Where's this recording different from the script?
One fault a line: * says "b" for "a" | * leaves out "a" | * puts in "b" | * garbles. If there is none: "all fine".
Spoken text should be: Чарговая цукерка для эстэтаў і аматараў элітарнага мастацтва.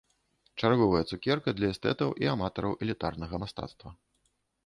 all fine